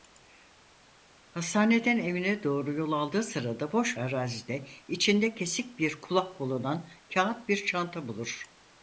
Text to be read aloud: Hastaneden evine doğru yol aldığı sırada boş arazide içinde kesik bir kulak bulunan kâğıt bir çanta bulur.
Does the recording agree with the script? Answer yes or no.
yes